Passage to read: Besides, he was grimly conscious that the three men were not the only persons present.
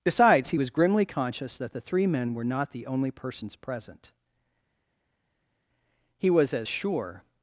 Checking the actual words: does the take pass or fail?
fail